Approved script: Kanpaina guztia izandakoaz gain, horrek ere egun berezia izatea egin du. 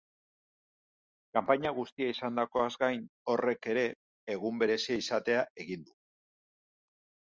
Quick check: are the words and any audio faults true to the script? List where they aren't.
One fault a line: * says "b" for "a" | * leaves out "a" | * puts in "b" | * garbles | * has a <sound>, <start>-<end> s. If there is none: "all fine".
all fine